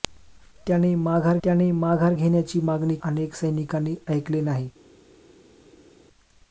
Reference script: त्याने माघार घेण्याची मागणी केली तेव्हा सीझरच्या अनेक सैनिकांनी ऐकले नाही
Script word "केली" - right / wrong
wrong